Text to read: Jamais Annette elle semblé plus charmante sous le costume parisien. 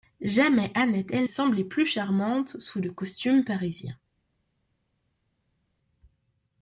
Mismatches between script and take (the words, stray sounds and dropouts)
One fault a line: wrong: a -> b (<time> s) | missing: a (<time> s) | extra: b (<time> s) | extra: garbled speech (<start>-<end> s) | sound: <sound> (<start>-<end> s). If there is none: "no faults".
no faults